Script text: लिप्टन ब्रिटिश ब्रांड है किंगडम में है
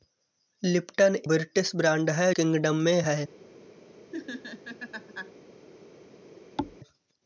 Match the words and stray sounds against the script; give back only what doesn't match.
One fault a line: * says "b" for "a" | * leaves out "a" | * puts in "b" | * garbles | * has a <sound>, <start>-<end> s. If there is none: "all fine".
* has a laugh, 4.1-5.3 s
* has a thud, 6.6-6.8 s